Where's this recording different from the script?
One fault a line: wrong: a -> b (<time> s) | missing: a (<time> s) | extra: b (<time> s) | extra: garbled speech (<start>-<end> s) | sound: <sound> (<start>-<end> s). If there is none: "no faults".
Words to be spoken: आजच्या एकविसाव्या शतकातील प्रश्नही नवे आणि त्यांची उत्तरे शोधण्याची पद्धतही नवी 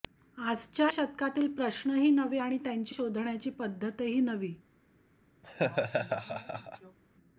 missing: एकविसाव्या (0.9 s)
missing: उत्तरे (2.9 s)
sound: laugh (5.4-7.0 s)